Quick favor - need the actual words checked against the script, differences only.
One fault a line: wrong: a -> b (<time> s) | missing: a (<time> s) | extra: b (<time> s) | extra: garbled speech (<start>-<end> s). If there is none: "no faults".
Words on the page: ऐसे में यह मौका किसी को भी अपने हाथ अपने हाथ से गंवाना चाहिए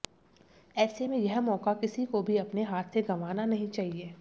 missing: अपने हाथ (3.0 s)
extra: नहीं (3.5 s)